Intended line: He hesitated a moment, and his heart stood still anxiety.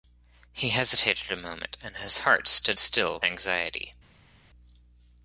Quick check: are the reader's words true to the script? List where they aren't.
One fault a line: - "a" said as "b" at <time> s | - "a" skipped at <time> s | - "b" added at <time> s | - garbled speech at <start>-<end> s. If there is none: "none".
none